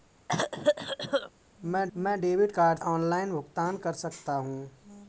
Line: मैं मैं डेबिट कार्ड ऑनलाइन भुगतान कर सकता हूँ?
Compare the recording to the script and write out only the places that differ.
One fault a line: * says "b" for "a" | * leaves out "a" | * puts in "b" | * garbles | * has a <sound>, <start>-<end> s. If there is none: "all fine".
* has a cough, 0.3-1.3 s